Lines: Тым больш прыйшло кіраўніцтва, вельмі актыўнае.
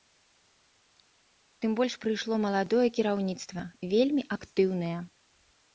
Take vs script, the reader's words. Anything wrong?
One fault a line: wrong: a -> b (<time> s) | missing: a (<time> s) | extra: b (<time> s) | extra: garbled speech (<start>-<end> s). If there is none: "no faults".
extra: маладое (2.5 s)